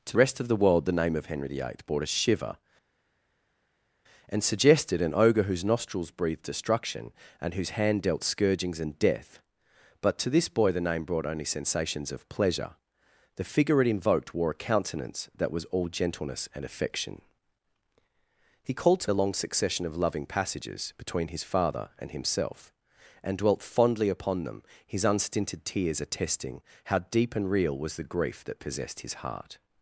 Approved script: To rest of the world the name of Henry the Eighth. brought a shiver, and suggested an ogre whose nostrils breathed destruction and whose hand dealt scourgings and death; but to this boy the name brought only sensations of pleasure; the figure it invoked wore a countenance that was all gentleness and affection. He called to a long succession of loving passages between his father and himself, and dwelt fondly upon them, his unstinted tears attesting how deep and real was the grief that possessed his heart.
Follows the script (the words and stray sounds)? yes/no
yes